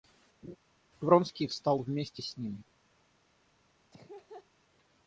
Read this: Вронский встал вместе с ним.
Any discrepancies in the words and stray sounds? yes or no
yes